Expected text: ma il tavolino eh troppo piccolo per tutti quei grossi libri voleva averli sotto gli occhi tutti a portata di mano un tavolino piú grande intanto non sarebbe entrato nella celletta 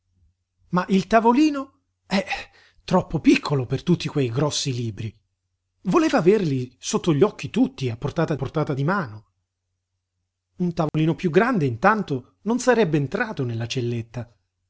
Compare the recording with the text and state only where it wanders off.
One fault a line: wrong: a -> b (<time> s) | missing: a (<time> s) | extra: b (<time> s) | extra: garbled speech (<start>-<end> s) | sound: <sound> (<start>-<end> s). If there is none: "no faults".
extra: portata (8.3 s)
sound: dropout (10.9-10.9 s)